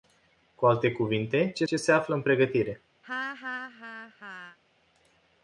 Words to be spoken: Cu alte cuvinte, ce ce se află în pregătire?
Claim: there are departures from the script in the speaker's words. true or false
false